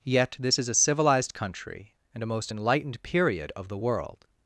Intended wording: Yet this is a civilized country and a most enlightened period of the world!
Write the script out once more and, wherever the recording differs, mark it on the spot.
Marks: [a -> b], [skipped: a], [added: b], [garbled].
Yet this is a civilized country and a most enlightened period of the world!